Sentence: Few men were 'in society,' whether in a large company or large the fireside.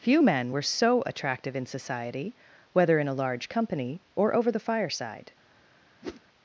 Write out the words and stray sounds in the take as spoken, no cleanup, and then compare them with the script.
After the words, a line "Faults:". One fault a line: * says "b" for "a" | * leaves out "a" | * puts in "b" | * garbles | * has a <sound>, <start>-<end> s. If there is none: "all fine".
Few men were so attractive 'in society,' whether in a large company or over the fireside.
Faults:
* puts in "so attractive"
* says "over" for "large"
* has a whoosh, 6.0-6.2 s